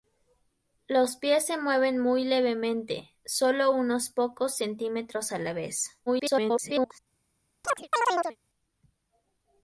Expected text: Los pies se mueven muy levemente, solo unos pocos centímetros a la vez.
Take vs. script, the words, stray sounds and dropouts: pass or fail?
fail